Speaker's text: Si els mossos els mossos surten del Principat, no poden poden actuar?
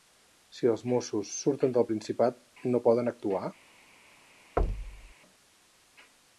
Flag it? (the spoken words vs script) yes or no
yes